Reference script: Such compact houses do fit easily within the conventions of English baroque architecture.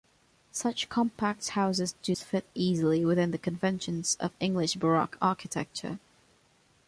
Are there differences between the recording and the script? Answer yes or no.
no